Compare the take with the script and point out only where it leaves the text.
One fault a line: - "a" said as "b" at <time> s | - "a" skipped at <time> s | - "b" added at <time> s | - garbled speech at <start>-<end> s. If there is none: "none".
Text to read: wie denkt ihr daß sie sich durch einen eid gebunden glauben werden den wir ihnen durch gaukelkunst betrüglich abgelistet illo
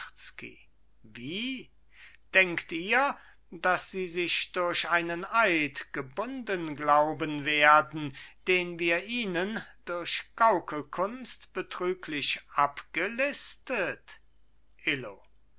none